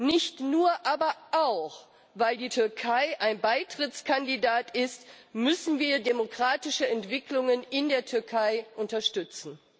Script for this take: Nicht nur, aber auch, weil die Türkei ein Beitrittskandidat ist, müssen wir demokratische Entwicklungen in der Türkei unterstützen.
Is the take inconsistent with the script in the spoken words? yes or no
no